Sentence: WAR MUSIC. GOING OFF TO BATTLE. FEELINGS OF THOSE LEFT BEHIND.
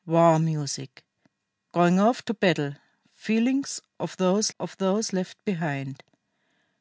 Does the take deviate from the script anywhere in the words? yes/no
yes